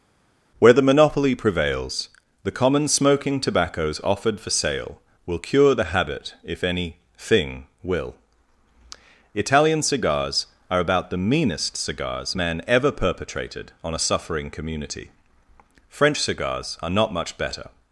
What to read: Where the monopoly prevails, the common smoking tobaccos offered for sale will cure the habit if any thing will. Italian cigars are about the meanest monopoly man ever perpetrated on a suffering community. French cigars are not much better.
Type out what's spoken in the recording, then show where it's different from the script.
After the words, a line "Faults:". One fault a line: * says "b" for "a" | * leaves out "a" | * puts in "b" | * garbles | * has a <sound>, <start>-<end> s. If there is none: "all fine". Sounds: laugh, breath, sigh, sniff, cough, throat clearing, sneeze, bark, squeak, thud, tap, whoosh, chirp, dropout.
Where the monopoly prevails, the common smoking tobaccos offered for sale will cure the habit if any thing will. Italian cigars are about the meanest cigars man ever perpetrated on a suffering community. French cigars are not much better.
Faults:
* says "cigars" for "monopoly"